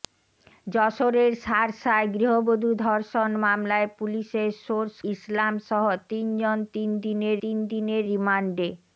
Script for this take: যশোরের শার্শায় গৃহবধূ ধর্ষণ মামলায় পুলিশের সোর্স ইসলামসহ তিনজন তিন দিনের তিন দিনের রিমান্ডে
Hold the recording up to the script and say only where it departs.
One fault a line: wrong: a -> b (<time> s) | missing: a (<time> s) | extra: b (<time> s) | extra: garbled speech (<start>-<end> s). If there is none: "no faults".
no faults